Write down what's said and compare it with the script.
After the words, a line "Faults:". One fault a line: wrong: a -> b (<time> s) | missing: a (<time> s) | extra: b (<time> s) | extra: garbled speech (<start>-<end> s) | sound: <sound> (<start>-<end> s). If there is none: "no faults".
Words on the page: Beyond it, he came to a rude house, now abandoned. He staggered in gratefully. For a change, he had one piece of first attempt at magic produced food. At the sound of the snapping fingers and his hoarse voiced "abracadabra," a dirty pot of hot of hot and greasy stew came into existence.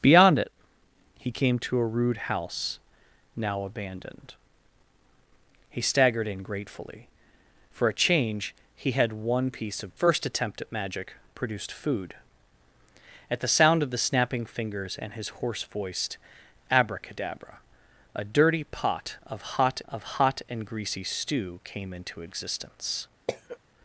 Beyond it, he came to a rude house, now abandoned. He staggered in gratefully. For a change, he had one piece of first attempt at magic produced food. At the sound of the snapping fingers and his hoarse voiced "abracadabra," a dirty pot of hot of hot and greasy stew came into existence.
Faults:
sound: cough (23.3-23.6 s)